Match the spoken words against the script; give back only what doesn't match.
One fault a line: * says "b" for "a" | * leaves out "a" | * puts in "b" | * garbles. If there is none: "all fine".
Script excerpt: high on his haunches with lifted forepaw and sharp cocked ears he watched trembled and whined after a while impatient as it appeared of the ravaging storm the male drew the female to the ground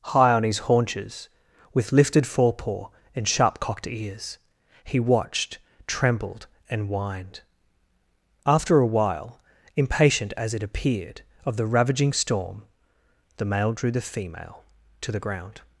all fine